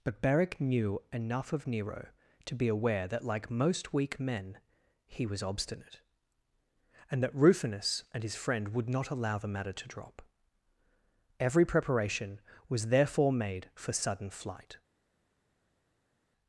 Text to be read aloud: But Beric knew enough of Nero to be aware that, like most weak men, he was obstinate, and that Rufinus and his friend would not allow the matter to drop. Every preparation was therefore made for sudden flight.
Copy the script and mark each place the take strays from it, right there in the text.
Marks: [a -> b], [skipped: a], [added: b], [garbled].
But Beric knew enough of Nero to be aware that, like most weak men, he was obstinate, and that Rufinus and his friend would not allow the matter to drop. Every preparation was therefore made for sudden flight.